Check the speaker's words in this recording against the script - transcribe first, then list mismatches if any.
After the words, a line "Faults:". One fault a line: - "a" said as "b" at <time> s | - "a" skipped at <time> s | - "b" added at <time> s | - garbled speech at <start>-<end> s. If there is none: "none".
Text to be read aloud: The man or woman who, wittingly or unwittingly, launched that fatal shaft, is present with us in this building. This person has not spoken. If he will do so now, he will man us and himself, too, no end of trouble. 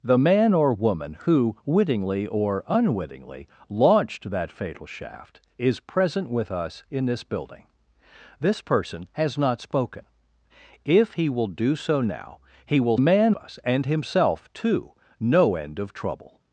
The man or woman who, wittingly or unwittingly, launched that fatal shaft, is present with us in this building. This person has not spoken. If he will do so now, he will man us and himself, too, no end of trouble.
Faults:
none